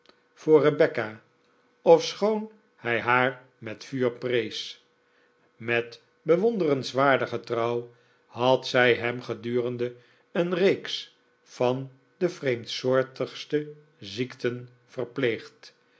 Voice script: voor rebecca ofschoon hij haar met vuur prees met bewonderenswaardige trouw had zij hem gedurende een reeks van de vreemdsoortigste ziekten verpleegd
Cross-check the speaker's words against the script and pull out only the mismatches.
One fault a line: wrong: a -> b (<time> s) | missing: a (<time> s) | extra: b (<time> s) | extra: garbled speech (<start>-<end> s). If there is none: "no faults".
no faults